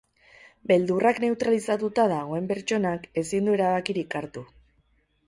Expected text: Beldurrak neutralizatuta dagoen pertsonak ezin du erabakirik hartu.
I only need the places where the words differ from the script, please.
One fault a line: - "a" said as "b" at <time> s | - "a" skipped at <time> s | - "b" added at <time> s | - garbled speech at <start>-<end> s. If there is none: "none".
none